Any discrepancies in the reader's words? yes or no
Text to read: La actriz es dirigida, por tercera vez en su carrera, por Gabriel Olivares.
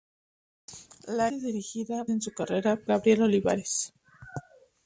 yes